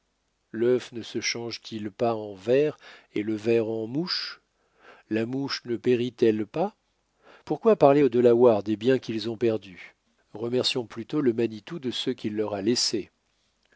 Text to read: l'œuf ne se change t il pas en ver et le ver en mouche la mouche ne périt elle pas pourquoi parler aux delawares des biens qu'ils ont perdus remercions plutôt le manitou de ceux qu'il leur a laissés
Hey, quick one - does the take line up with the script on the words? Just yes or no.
yes